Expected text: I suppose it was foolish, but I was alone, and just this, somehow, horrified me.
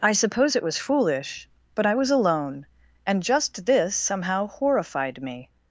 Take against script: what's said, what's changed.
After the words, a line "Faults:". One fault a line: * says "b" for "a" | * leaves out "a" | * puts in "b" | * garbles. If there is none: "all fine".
I suppose it was foolish, but I was alone, and just this, somehow, horrified me.
Faults:
all fine